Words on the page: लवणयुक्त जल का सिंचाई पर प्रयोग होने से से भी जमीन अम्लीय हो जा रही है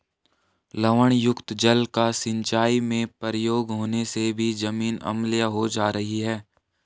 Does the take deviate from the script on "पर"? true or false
true